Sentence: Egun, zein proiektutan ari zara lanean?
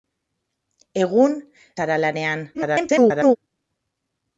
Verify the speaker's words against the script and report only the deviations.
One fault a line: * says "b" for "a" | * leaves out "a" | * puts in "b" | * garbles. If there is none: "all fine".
* leaves out "zein proiektutan ari"
* garbles